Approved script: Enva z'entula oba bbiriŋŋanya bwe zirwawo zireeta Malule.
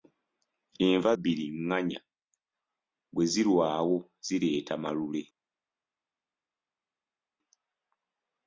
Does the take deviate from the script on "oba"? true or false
true